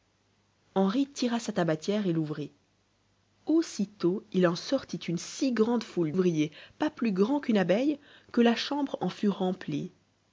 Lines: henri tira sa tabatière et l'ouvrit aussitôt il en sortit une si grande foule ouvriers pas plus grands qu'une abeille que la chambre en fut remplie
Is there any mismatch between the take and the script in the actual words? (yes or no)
no